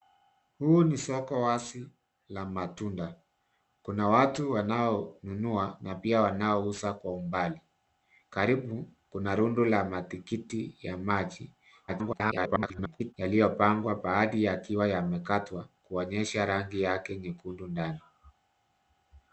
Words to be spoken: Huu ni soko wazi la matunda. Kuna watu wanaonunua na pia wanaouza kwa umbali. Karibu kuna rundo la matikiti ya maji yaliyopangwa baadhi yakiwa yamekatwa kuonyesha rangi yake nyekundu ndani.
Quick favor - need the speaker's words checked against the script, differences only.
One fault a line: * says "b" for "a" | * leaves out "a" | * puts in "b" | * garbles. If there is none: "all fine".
* garbles